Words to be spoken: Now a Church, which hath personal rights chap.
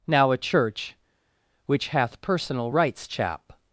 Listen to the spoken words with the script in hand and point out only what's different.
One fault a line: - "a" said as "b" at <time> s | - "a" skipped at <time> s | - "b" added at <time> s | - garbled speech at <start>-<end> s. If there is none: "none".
none